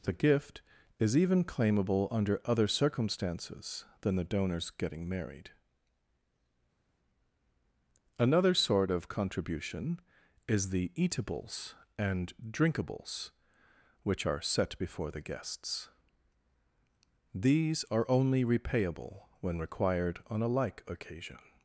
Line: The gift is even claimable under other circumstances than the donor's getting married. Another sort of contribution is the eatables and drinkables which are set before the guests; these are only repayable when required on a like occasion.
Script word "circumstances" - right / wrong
right